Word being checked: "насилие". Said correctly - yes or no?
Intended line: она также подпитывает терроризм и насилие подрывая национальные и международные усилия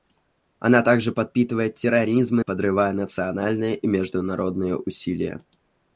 no